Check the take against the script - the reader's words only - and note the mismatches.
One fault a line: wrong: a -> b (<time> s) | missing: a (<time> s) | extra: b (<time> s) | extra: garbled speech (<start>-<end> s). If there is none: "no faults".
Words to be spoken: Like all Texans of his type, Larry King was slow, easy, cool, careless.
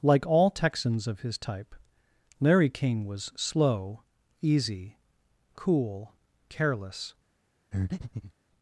no faults